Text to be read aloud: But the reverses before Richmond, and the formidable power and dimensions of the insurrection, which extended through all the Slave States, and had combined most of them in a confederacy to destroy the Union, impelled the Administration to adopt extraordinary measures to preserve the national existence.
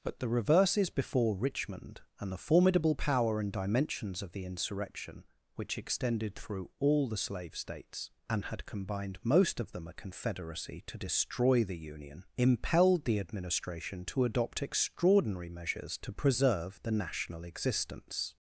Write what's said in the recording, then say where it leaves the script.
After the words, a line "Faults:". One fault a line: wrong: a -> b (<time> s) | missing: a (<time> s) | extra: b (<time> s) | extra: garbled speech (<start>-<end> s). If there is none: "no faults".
But the reverses before Richmond, and the formidable power and dimensions of the insurrection, which extended through all the Slave States, and had combined most of them a confederacy to destroy the Union, impelled the Administration to adopt extraordinary measures to preserve the national existence.
Faults:
missing: in (9.9 s)